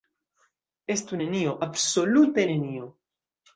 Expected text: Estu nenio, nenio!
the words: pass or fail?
fail